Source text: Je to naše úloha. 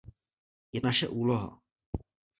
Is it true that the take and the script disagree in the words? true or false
true